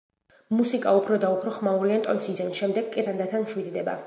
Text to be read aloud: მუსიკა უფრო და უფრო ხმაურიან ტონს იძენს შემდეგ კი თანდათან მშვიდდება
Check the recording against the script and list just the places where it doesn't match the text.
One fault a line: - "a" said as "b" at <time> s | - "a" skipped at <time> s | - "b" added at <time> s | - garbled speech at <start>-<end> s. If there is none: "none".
none